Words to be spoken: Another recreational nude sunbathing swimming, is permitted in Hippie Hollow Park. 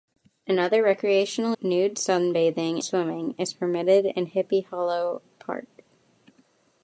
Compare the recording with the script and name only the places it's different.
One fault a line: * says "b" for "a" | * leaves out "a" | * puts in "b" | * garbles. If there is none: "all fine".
all fine